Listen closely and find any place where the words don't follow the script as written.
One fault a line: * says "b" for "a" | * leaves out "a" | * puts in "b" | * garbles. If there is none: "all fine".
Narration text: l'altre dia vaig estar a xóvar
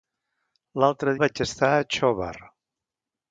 * leaves out "dia"